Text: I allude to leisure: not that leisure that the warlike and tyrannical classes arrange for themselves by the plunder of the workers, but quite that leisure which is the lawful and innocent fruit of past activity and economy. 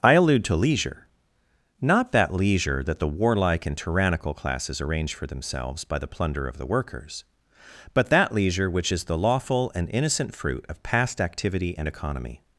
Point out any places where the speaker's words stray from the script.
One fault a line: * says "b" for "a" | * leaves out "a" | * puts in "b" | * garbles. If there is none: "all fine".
* leaves out "quite"